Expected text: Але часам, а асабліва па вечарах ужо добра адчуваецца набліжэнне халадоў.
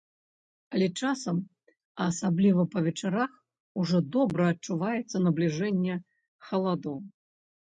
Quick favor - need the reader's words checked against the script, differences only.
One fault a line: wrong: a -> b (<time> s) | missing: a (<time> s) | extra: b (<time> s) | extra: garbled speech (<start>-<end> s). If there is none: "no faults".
no faults